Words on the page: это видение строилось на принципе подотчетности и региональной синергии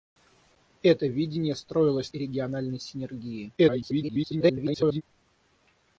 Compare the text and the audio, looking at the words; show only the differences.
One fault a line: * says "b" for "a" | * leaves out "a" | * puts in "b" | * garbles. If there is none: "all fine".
* leaves out "на принципе подотчетности"
* garbles